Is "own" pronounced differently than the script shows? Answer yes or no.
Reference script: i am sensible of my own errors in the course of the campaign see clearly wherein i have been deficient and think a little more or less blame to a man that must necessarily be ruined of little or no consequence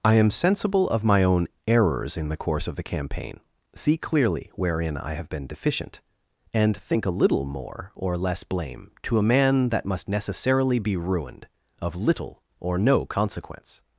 no